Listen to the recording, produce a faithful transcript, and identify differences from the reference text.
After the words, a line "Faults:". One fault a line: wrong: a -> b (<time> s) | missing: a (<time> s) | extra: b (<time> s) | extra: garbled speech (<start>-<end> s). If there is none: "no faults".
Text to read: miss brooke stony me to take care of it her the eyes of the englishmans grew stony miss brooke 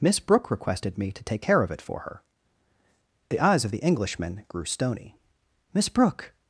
miss brooke requested me to take care of it for her the eyes of the englishman grew stony miss brooke
Faults:
wrong: stony -> requested (0.5 s)
extra: for (1.8 s)
wrong: englishmans -> englishman (3.8 s)